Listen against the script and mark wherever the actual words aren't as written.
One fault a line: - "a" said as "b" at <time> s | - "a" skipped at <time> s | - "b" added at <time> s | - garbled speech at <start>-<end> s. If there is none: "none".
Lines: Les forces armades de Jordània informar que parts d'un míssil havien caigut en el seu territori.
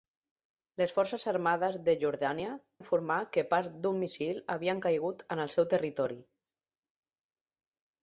none